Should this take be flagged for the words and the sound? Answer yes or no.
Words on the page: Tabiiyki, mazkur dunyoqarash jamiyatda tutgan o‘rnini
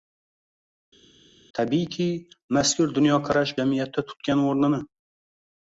no